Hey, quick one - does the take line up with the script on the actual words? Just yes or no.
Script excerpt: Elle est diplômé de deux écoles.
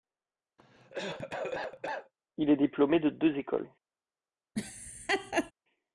no